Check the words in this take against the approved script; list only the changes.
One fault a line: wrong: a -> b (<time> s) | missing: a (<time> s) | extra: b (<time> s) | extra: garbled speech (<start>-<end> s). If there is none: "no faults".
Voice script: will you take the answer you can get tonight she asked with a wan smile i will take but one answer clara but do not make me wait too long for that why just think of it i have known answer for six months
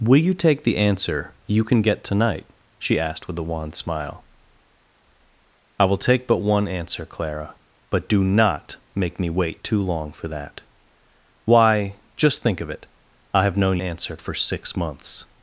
no faults